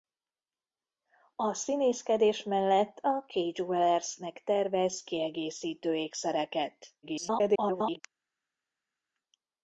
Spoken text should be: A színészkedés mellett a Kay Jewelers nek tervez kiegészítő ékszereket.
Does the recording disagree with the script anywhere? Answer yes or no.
yes